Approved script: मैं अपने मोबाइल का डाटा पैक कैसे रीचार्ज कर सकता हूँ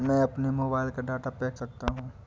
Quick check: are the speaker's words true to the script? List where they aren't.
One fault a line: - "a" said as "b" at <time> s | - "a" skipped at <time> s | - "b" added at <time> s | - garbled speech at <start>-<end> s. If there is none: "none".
- "कैसे रीचार्ज कर" skipped at 1.6 s